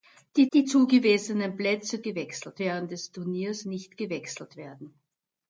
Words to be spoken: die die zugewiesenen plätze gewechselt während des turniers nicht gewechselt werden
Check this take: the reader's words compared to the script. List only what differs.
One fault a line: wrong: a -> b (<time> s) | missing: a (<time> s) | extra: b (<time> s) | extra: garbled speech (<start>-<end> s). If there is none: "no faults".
no faults